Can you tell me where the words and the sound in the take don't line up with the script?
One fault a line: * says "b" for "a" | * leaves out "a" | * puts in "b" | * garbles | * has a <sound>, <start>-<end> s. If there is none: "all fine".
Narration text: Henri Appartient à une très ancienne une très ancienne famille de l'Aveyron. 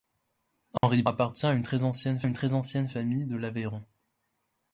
* has a dropout, 0.8-0.8 s